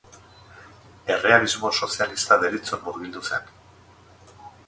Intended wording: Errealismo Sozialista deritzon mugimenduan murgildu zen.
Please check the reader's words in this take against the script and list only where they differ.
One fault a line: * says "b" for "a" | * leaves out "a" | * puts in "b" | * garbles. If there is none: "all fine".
* leaves out "mugimenduan"